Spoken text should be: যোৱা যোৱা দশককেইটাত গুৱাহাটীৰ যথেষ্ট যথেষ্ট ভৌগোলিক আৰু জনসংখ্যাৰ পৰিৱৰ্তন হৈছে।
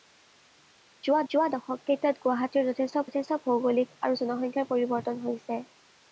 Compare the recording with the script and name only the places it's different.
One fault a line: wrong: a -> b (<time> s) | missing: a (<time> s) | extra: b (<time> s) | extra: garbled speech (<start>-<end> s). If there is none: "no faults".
no faults